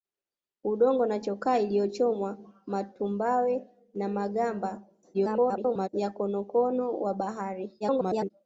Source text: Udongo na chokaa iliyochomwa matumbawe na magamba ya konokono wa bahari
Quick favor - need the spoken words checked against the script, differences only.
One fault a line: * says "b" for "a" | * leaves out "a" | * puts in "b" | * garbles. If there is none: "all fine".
* garbles
* garbles